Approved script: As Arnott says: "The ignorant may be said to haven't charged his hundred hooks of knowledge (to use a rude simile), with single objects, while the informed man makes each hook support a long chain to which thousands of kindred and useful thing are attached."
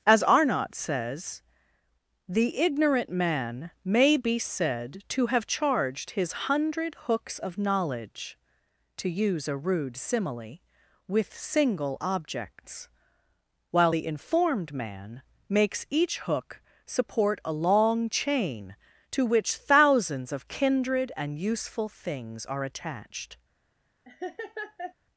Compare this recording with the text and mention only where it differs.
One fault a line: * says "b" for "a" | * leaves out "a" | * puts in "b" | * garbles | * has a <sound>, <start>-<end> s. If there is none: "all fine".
* puts in "man"
* says "have" for "haven't"
* says "things" for "thing"
* has a laugh, 24.0-24.9 s